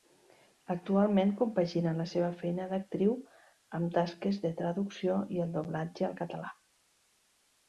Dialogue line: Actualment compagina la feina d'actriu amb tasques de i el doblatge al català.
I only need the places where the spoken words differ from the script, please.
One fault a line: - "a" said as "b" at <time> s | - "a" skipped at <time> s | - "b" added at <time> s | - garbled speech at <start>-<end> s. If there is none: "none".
- "seva" added at 2.1 s
- "traducció" added at 4.6 s